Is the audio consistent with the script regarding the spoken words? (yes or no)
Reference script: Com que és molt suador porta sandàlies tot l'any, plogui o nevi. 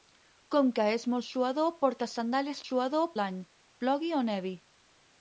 no